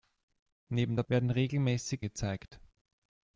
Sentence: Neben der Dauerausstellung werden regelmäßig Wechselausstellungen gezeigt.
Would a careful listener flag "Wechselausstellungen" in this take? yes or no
yes